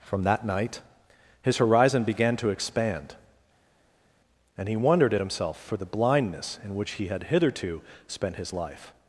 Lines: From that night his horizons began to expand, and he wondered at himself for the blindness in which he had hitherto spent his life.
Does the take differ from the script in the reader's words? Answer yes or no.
yes